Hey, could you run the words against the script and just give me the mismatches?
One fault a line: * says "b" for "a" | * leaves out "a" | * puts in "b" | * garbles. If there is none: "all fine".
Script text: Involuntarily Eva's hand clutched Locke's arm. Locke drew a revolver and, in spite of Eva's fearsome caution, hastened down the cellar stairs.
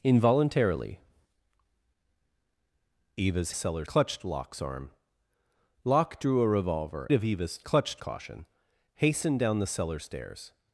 * says "cellar" for "hand"
* leaves out "and in spite"
* says "clutched" for "fearsome"